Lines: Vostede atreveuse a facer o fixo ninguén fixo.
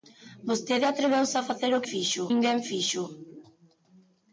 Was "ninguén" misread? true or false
false